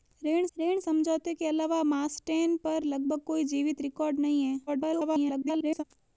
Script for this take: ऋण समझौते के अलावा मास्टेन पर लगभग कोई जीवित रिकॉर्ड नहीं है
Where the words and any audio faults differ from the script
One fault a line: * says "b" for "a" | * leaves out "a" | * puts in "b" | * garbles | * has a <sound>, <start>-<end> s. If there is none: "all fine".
* puts in "ऋण"
* garbles